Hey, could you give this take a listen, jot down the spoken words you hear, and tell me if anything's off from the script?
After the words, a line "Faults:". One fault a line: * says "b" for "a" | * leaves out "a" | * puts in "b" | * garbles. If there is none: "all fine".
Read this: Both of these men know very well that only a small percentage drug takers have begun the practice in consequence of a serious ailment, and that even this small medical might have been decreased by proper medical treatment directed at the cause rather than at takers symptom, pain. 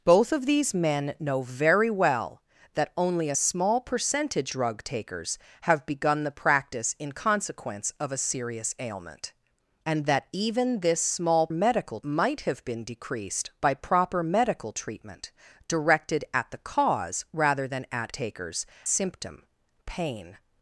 Both of these men know very well that only a small percentage drug takers have begun the practice in consequence of a serious ailment, and that even this small medical might have been decreased by proper medical treatment directed at the cause rather than at takers symptom, pain.
Faults:
all fine